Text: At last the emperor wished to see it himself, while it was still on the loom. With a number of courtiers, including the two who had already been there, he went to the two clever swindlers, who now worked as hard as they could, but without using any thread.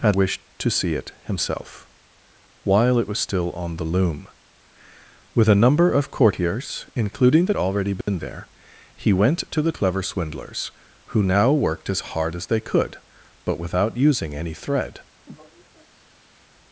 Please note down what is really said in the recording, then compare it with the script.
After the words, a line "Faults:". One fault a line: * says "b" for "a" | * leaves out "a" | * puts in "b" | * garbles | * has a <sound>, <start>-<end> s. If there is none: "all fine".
At wished to see it himself, while it was still on the loom. With a number of courtiers, including the already been there, he went to the clever swindlers, who now worked as hard as they could, but without using any thread.
Faults:
* leaves out "last the emperor"
* leaves out "two who had"
* has a dropout, 8.0-8.1 s
* leaves out "two"
* has a sigh, 15.3-16.5 s